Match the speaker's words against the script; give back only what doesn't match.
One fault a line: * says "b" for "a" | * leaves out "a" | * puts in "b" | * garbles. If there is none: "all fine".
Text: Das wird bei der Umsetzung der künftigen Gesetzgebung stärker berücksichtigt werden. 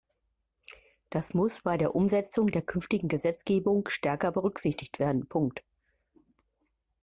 * says "muss" for "wird"